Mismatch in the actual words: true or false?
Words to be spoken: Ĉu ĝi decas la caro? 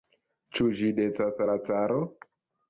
false